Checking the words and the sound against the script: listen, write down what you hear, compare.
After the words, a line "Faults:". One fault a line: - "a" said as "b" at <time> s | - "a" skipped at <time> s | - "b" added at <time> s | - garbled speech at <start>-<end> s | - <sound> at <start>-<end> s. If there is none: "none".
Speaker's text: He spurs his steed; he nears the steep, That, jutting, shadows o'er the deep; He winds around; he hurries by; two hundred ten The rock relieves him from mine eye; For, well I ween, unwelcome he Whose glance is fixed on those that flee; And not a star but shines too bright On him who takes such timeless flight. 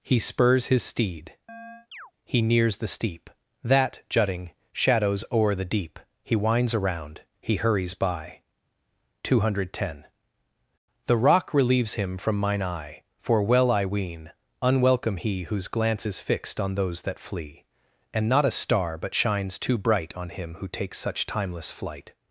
He spurs his steed; he nears the steep, That, jutting, shadows o'er the deep; He winds around; he hurries by; two hundred ten The rock relieves him from mine eye; For, well I ween, unwelcome he Whose glance is fixed on those that flee; And not a star but shines too bright On him who takes such timeless flight.
Faults:
- chirp at 1.5-2.1 s